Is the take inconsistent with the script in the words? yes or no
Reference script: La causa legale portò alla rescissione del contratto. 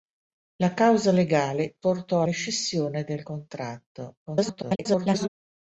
yes